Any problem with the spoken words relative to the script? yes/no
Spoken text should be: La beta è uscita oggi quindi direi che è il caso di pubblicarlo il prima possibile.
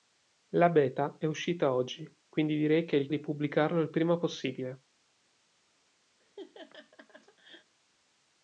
yes